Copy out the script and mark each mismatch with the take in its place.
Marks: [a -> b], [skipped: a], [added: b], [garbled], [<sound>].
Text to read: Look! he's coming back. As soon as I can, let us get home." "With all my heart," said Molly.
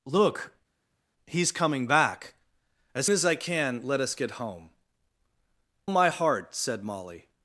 Look! he's coming back. As [skipped: soon] as I can, let us get home." [skipped: "With all] my heart," said Molly.